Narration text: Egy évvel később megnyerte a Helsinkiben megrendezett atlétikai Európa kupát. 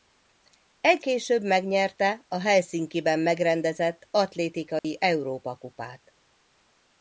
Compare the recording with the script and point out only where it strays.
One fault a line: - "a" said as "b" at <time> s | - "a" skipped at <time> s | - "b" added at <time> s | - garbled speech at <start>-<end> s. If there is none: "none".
- "évvel" skipped at 1.1 s